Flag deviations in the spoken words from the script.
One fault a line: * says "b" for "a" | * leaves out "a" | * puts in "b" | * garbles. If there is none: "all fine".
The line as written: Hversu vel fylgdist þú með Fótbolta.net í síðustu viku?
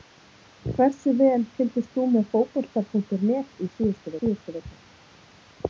* puts in "síðustu"